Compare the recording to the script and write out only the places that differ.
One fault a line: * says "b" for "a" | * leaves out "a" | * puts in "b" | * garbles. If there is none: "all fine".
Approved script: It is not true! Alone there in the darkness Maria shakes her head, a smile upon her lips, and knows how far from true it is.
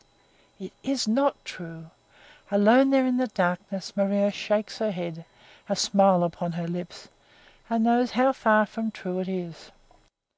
all fine